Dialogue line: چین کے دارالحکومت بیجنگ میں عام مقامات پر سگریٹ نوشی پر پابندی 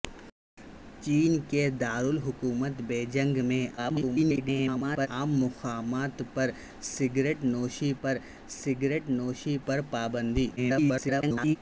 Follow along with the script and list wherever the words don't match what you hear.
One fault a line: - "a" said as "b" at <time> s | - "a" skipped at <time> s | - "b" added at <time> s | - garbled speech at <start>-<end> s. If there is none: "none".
- garbled speech at 3.8-5.1 s
- "سگریٹ نوشی پر" added at 8.5 s
- garbled speech at 10.6-11.6 s